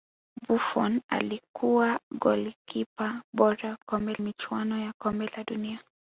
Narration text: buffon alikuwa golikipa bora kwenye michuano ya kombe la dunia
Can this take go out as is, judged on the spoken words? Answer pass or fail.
fail